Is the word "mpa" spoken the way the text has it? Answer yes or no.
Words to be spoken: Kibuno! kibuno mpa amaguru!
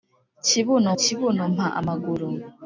yes